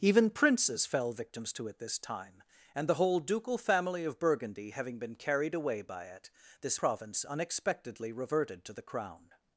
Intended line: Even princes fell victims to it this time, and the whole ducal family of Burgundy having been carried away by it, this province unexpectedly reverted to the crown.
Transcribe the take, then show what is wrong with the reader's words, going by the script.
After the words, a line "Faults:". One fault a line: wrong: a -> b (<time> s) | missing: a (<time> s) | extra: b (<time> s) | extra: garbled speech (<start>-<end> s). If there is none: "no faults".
Even princes fell victims to it this time, and the whole ducal family of Burgundy having been carried away by it, this province unexpectedly reverted to the crown.
Faults:
no faults